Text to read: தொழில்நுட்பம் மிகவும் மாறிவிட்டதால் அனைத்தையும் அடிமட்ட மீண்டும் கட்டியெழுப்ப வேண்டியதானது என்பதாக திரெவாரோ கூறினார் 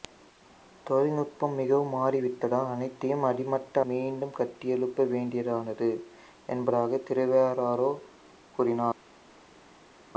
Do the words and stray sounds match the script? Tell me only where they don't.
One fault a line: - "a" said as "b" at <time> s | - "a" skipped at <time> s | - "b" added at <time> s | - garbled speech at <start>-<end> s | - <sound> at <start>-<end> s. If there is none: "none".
none